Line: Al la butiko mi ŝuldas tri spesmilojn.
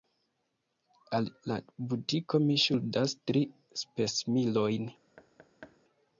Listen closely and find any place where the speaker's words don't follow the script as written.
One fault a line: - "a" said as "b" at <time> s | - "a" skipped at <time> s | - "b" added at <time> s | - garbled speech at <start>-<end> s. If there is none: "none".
none